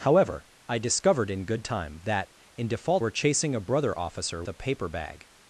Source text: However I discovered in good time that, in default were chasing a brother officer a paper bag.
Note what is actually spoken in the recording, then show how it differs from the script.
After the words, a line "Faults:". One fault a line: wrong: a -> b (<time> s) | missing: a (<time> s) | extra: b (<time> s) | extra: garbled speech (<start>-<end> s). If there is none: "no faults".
However I discovered in good time that, in default were chasing a brother officer a paper bag.
Faults:
no faults